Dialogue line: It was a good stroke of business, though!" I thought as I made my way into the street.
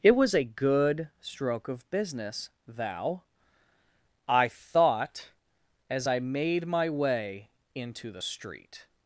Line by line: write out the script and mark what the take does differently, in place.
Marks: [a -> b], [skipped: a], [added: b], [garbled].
It was a good stroke of business, [though!" -> thou] I thought as I made my way into the street.